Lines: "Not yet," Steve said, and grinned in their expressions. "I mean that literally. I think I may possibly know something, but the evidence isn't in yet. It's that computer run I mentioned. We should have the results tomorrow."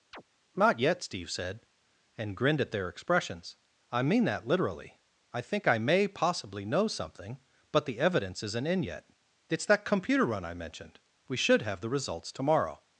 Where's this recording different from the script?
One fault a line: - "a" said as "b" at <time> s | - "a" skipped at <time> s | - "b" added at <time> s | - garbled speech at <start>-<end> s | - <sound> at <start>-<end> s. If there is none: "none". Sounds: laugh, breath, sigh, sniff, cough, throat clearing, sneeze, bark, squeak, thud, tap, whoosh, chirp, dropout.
- chirp at 0.1-0.2 s
- "in" said as "at" at 2.6 s